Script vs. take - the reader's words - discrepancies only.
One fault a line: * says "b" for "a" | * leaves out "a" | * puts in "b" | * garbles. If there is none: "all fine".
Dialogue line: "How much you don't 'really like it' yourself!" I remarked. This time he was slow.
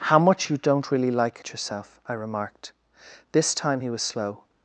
all fine